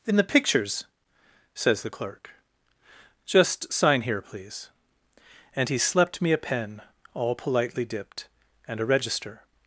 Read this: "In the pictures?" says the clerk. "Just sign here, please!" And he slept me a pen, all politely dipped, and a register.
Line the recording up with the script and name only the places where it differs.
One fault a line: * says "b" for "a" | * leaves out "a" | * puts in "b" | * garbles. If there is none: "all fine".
all fine